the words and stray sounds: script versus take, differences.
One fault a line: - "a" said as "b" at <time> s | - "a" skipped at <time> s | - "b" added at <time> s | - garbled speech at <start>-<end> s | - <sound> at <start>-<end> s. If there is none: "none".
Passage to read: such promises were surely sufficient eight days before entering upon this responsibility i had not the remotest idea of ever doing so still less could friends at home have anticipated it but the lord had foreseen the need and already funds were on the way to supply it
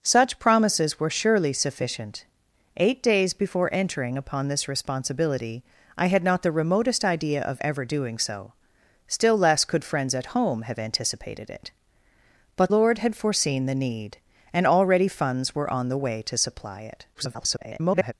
- "the" skipped at 12.7 s
- garbled speech at 17.1-18.1 s